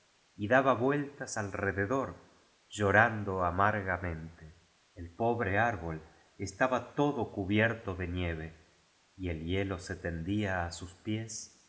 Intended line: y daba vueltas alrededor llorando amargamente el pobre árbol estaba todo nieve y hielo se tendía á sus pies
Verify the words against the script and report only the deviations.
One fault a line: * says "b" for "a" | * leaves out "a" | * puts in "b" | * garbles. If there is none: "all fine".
* puts in "cubierto de"
* puts in "el"